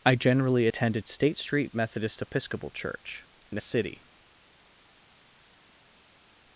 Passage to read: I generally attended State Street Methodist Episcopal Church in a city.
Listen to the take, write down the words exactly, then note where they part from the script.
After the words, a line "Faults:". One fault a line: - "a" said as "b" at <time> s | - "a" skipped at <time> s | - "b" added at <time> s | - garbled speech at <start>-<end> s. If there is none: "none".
I generally attended State Street Methodist Episcopal Church in a city.
Faults:
none